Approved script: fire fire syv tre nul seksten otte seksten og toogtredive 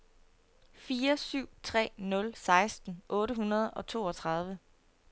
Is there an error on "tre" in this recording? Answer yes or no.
no